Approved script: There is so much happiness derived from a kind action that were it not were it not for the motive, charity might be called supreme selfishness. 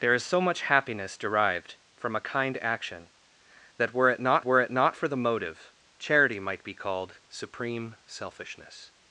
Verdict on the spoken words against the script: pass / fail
pass